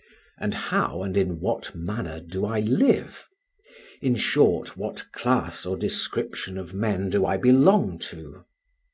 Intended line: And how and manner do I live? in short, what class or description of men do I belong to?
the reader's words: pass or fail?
fail